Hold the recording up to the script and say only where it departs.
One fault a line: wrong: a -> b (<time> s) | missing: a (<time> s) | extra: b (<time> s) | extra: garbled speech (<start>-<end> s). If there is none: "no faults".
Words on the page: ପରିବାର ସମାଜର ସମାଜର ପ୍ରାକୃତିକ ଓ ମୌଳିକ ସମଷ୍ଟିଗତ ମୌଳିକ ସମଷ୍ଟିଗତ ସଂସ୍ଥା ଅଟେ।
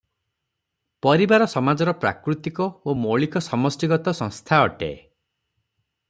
missing: ସମାଜର (1.9 s)
missing: ମୌଳିକ ସମଷ୍ଟିଗତ (4.2 s)